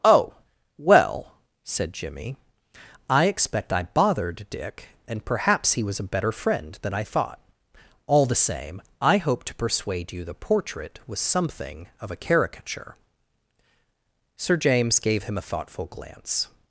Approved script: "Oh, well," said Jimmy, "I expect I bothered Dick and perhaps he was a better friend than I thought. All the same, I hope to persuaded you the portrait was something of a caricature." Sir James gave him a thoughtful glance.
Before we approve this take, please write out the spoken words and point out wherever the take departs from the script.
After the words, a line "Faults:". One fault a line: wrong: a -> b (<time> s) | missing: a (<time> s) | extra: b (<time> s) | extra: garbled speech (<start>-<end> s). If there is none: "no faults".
"Oh, well," said Jimmy, "I expect I bothered Dick and perhaps he was a better friend than I thought. All the same, I hope to persuade you the portrait was something of a caricature." Sir James gave him a thoughtful glance.
Faults:
wrong: persuaded -> persuade (9.6 s)